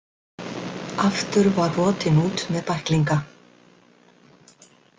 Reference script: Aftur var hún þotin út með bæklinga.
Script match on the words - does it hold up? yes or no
no